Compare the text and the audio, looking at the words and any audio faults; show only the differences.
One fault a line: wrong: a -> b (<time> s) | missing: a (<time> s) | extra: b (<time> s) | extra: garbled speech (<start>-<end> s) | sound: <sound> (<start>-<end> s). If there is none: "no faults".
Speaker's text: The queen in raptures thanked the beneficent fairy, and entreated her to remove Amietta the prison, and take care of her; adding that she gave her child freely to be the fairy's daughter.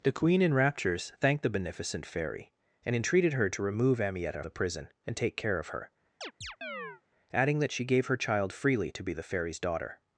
sound: chirp (6.2-7.0 s)